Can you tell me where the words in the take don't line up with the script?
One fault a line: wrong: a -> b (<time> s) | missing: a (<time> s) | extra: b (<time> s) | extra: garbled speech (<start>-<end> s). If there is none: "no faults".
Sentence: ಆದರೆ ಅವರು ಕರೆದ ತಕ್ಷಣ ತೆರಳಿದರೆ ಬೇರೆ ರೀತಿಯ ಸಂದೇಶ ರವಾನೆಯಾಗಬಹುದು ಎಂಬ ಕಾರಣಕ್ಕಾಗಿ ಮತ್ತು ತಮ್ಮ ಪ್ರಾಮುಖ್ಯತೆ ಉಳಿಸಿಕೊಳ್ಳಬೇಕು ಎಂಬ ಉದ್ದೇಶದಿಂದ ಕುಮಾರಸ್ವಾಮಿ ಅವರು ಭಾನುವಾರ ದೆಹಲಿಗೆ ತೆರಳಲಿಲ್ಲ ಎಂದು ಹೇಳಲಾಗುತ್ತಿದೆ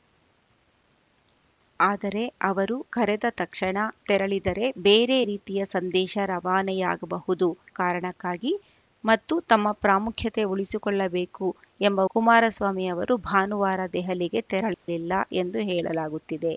missing: ಎಂಬ (7.5 s)
missing: ಉದ್ದೇಶದಿಂದ (12.0 s)